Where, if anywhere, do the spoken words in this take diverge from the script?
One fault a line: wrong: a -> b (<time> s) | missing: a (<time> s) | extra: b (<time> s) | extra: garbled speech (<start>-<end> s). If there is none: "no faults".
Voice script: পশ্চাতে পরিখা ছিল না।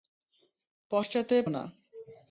missing: পরিখা ছিল (1.4 s)